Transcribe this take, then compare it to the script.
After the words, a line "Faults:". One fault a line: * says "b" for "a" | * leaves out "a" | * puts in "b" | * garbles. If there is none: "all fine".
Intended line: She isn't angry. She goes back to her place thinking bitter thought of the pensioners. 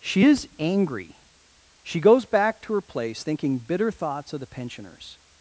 She is angry. She goes back to her place thinking bitter thoughts of the pensioners.
Faults:
* says "is" for "isn't"
* says "thoughts" for "thought"